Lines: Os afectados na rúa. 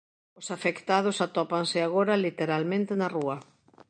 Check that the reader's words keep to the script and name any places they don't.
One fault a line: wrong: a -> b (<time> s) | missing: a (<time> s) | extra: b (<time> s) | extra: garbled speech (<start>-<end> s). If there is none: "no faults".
extra: atópanse agora literalmente (1.3 s)